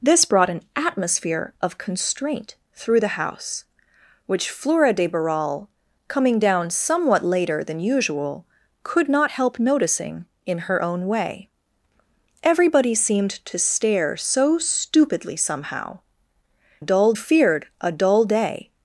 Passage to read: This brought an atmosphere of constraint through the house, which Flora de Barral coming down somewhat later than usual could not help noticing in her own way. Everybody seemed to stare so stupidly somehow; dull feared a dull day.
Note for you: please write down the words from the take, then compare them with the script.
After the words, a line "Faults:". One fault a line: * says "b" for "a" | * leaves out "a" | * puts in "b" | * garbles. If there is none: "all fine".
This brought an atmosphere of constraint through the house, which Flora de Barral coming down somewhat later than usual could not help noticing in her own way. Everybody seemed to stare so stupidly somehow; dull feared a dull day.
Faults:
all fine